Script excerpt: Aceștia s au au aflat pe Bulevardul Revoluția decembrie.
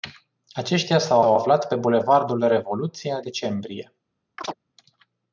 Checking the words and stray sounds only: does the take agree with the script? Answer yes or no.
no